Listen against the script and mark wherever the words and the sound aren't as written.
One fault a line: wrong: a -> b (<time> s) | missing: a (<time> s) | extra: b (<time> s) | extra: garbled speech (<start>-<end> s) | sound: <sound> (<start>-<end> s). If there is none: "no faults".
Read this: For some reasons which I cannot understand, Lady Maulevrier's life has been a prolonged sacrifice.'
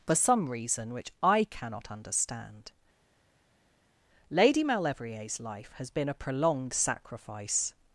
wrong: reasons -> reason (0.5 s)